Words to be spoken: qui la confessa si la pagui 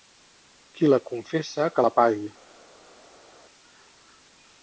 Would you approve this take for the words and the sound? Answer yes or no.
no